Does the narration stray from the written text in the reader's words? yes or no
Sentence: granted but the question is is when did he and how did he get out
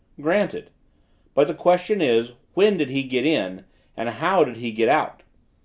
yes